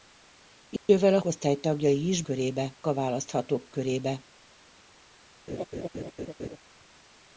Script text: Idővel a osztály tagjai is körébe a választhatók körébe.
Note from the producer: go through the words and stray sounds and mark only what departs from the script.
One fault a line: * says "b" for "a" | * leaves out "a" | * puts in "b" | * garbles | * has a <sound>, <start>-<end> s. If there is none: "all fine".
* has a dropout, 0.8-0.9 s
* has a laugh, 5.5-6.6 s